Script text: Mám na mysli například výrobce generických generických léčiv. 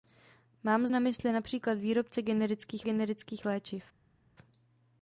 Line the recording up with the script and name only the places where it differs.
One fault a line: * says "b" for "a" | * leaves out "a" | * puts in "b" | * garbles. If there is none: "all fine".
all fine